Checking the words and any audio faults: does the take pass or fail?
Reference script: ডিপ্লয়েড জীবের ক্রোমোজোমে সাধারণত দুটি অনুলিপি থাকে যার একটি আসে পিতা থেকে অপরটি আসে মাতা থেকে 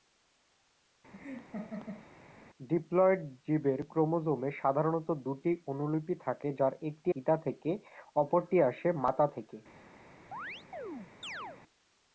fail